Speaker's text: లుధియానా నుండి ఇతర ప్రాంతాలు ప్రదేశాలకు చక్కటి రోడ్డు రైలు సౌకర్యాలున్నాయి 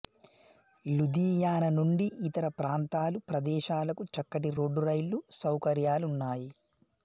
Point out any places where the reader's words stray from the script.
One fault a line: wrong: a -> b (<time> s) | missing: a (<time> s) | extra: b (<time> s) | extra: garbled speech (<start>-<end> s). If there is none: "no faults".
no faults